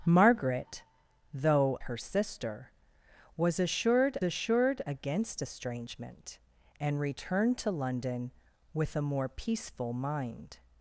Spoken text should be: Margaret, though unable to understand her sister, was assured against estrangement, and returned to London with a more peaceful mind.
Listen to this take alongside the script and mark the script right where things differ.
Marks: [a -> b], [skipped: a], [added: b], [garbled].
Margaret, though [skipped: unable to understand] her sister, was assured [added: assured] against estrangement, and returned to London with a more peaceful mind.